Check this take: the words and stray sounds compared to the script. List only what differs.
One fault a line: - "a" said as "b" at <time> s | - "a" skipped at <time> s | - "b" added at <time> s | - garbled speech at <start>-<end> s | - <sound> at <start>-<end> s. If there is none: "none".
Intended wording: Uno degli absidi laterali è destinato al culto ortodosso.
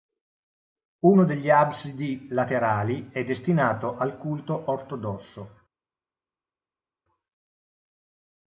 none